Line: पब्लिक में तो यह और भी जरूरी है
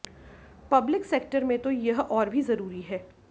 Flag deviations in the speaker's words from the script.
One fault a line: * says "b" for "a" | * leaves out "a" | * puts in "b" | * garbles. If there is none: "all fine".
* puts in "सेक्टर"